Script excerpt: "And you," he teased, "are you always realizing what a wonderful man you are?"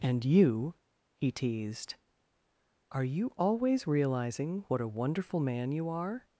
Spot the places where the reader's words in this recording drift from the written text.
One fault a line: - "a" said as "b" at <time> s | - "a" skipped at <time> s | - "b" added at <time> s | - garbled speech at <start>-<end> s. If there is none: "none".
none